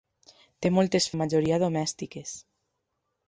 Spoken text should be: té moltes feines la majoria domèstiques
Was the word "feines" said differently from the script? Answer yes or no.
yes